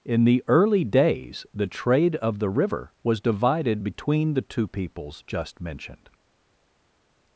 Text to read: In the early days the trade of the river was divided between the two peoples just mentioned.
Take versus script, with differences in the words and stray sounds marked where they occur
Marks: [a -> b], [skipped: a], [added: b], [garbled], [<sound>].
In the early days the trade of the river was divided between the two peoples just mentioned.